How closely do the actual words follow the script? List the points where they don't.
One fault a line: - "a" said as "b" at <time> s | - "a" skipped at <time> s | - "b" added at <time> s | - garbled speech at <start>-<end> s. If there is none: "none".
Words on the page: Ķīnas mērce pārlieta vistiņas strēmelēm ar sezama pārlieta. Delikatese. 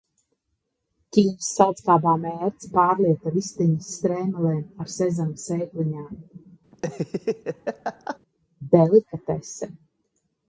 - "saldskābā" added at 1.6 s
- "pārlieta" said as "sēkliņām" at 5.4 s